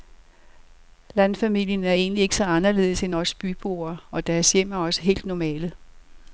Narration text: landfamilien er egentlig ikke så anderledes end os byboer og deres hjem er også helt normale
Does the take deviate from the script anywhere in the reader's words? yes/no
no